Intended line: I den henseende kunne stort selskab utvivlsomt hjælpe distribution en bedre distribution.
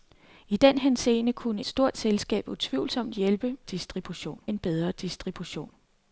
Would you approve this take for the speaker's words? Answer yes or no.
yes